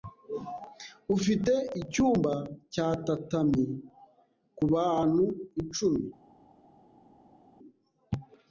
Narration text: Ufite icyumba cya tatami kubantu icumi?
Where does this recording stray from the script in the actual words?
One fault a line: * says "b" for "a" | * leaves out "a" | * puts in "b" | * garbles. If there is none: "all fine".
all fine